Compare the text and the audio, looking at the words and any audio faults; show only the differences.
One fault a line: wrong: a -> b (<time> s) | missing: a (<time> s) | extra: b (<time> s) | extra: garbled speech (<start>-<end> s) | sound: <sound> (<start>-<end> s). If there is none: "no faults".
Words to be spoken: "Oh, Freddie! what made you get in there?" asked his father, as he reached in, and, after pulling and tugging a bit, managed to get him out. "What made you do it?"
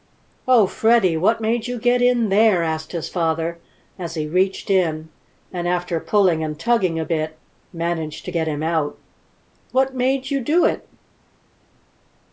no faults